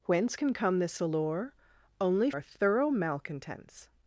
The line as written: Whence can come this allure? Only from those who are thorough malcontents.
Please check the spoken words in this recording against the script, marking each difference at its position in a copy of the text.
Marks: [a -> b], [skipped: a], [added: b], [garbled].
Whence can come this allure? Only [skipped: from those who] are thorough malcontents.